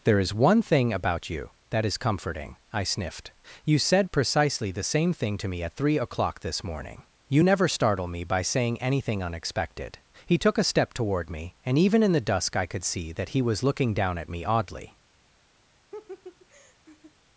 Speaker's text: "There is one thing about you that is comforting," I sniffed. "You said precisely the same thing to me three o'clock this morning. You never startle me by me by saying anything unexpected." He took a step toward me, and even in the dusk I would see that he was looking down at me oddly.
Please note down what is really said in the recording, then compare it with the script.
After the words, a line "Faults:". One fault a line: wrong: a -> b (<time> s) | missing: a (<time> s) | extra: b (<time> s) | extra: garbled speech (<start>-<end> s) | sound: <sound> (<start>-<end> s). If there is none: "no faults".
"There is one thing about you that is comforting," I sniffed. "You said precisely the same thing to me at three o'clock this morning. You never startle me by saying anything unexpected." He took a step toward me, and even in the dusk I could see that he was looking down at me oddly.
Faults:
extra: at (5.6 s)
missing: me by (8.4 s)
wrong: would -> could (12.7 s)
sound: laugh (15.9-17.1 s)